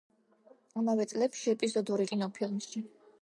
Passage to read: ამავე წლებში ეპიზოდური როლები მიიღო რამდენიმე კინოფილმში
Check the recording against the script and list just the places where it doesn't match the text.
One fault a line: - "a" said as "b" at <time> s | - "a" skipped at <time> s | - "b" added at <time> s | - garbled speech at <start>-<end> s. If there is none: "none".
- "როლები მიიღო რამდენიმე" skipped at 2.1 s